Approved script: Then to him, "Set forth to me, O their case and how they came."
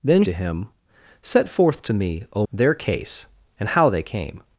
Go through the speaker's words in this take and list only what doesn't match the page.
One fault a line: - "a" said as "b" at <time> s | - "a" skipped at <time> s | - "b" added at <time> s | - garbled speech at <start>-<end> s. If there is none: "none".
none